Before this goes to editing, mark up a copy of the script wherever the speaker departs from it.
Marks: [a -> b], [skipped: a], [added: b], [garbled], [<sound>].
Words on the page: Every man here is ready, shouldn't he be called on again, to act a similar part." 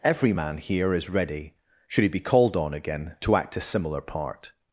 Every man here is ready, [shouldn't -> should] he be called on again, to act a similar part."